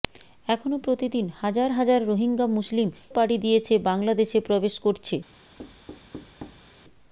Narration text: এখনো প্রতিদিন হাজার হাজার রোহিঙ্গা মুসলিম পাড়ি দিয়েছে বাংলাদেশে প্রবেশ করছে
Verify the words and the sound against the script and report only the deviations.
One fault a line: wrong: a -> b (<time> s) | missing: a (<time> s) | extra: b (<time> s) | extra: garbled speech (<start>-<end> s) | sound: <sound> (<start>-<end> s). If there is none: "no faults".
sound: thud (5.6-6.7 s)